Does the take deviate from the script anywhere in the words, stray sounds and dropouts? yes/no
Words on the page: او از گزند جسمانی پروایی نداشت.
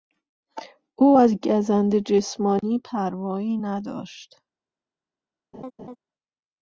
yes